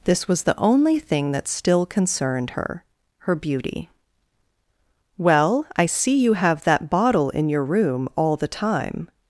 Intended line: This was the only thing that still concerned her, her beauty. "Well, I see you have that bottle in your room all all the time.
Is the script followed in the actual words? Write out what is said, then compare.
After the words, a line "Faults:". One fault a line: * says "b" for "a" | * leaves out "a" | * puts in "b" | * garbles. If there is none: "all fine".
This was the only thing that still concerned her, her beauty. "Well, I see you have that bottle in your room all the time.
Faults:
* leaves out "all"